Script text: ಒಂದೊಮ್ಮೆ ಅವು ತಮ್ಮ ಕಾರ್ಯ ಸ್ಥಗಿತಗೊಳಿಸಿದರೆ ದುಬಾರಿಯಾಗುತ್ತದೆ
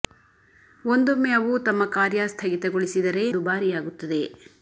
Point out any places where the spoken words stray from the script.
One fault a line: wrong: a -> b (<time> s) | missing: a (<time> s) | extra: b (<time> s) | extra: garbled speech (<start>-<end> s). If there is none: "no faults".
no faults